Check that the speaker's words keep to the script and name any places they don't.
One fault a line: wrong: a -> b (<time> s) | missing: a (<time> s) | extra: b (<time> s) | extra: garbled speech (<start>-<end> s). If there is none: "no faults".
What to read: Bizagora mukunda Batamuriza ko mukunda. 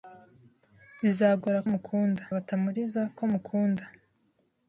no faults